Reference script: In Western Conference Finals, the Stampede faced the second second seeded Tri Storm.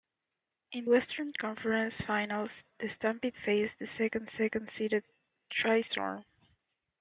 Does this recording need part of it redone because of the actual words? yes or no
no